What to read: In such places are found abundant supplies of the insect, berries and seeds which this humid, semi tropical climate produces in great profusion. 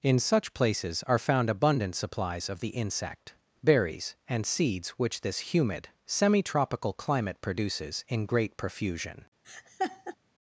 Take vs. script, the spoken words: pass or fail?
pass